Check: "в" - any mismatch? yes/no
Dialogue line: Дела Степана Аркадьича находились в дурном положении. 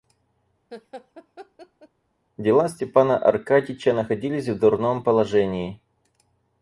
no